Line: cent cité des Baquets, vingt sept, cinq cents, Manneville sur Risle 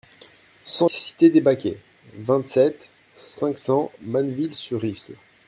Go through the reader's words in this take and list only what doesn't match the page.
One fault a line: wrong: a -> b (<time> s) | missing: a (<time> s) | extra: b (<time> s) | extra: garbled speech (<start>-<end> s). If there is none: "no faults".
no faults